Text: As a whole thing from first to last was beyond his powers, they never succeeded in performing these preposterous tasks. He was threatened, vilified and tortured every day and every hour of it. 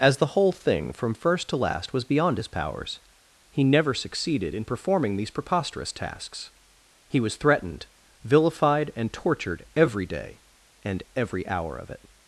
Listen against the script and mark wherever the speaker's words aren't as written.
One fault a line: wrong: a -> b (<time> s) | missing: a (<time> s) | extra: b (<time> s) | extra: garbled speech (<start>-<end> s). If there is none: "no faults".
wrong: a -> the (0.2 s)
wrong: they -> he (3.5 s)